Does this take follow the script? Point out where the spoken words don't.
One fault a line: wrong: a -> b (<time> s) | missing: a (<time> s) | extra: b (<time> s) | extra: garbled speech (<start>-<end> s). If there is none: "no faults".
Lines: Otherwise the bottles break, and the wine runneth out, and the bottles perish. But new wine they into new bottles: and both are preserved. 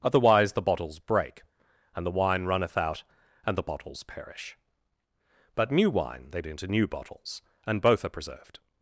no faults